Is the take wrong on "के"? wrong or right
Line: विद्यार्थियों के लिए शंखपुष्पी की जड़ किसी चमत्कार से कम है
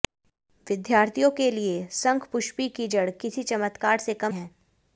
right